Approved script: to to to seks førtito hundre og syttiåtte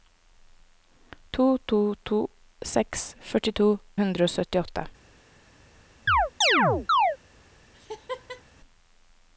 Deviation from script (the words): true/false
false